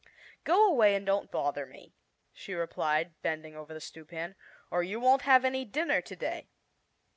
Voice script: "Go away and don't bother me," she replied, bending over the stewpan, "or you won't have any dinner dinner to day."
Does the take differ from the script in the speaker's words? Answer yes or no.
yes